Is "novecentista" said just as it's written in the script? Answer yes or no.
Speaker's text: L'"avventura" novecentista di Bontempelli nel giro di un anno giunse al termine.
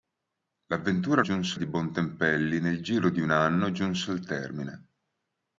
no